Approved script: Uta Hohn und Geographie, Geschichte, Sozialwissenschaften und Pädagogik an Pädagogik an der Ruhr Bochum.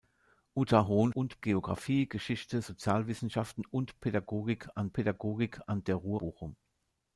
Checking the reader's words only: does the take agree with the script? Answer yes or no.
yes